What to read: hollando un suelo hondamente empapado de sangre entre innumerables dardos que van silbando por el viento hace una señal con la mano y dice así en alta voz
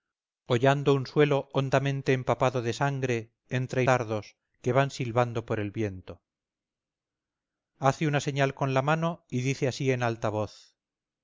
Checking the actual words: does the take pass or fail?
fail